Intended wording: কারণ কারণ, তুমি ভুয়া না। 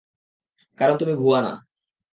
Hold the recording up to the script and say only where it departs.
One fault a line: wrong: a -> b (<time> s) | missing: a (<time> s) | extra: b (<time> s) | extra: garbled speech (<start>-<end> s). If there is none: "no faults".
missing: কারণ (0.9 s)